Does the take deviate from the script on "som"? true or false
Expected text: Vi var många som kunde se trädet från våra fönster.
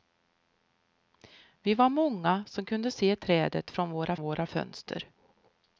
false